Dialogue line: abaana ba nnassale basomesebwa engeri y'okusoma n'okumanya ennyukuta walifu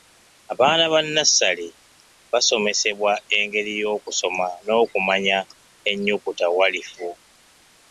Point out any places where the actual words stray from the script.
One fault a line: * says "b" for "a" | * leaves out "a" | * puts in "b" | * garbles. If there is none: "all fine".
all fine